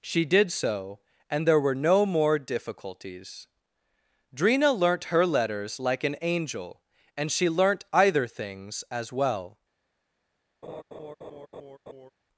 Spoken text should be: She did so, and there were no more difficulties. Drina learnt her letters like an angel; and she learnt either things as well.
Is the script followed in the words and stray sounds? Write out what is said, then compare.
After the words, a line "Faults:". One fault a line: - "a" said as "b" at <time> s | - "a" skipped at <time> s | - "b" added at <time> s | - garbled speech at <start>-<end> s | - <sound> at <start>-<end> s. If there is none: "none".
She did so, and there were no more difficulties. Drina learnt her letters like an angel; and she learnt either things as well.
Faults:
- laugh at 10.6-12.1 s